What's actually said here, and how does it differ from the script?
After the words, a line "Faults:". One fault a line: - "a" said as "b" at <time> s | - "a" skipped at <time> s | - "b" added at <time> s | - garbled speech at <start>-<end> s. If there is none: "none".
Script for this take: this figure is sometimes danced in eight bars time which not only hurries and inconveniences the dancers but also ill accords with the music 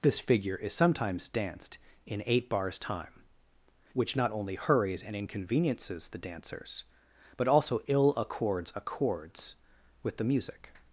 this figure is sometimes danced in eight bars time which not only hurries and inconveniences the dancers but also ill accords accords with the music
Faults:
- "accords" added at 8.7 s